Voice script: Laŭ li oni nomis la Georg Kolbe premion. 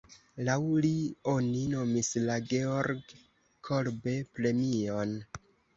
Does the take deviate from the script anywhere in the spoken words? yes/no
no